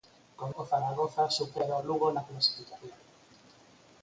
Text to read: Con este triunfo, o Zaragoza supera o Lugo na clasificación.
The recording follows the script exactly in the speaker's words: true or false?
false